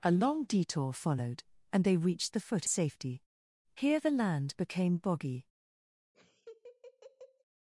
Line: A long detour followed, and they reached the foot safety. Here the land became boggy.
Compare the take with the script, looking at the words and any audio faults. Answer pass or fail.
fail